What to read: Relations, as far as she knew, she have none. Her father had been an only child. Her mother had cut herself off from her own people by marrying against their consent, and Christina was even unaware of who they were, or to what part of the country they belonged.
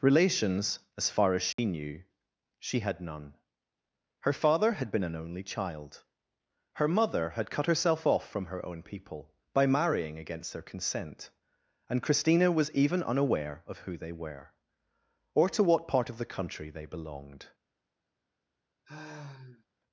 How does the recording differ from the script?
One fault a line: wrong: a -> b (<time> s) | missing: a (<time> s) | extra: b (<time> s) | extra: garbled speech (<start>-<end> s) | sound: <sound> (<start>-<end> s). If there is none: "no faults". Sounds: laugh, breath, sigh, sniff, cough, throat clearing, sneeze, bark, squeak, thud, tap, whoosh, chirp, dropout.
sound: dropout (1.5-1.6 s)
wrong: have -> had (2.8 s)
sound: sigh (18.9-19.7 s)